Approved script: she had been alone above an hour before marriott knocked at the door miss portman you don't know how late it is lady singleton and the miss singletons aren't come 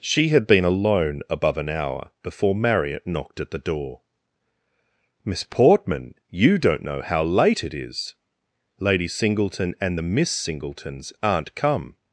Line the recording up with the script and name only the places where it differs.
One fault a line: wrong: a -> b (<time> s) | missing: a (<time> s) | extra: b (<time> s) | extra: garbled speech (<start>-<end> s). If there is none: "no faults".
no faults